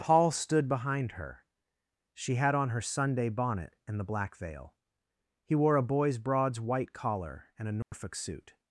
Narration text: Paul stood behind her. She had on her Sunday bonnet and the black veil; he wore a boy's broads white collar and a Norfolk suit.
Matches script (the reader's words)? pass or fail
pass